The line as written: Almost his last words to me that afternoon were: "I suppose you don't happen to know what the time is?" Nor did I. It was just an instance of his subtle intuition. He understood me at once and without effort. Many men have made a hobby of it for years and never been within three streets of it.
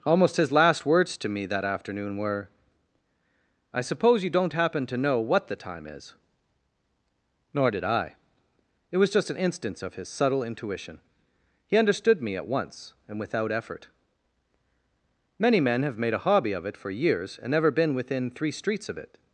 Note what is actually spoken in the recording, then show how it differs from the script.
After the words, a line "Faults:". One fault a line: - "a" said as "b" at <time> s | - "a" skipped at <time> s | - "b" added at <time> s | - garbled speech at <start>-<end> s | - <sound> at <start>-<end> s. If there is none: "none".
Almost his last words to me that afternoon were: "I suppose you don't happen to know what the time is?" Nor did I. It was just an instance of his subtle intuition. He understood me at once and without effort. Many men have made a hobby of it for years and never been within three streets of it.
Faults:
none